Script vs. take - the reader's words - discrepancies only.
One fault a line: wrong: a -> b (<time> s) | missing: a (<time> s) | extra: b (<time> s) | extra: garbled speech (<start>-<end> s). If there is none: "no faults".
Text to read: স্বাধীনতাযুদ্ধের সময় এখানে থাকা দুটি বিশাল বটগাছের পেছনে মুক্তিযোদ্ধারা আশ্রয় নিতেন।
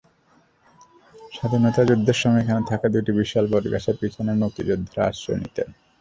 no faults